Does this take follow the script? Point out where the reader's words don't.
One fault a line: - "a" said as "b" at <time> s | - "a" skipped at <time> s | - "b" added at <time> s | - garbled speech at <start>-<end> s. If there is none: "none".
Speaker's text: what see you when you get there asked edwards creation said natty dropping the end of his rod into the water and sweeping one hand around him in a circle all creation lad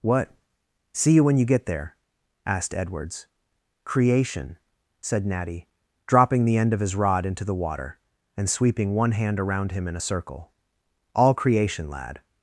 none